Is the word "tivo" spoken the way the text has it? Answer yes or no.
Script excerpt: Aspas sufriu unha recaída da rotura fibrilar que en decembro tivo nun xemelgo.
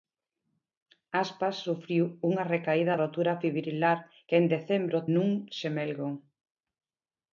no